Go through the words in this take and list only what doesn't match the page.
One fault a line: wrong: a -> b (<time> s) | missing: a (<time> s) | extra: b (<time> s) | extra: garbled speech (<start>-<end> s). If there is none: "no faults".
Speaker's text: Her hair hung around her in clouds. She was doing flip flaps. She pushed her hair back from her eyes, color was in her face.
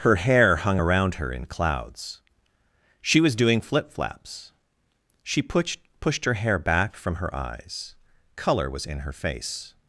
extra: pushed (6.0 s)